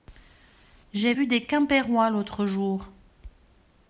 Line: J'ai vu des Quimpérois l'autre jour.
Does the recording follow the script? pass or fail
pass